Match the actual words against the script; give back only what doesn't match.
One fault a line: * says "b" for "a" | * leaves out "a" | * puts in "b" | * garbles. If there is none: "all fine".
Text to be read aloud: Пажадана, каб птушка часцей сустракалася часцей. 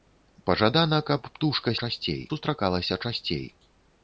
all fine